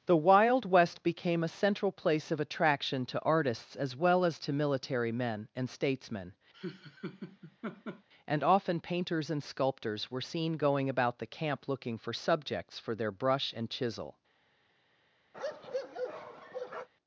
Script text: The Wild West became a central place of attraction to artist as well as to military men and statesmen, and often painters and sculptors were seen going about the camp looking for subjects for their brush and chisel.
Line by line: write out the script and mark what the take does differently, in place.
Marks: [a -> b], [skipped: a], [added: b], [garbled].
The Wild West became a central place of attraction to [artist -> artists] as well as to military men and statesmen, and often painters and sculptors were seen going about the camp looking for subjects for their brush and chisel.